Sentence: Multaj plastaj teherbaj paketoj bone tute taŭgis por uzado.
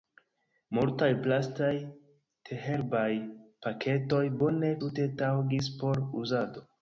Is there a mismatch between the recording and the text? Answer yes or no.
no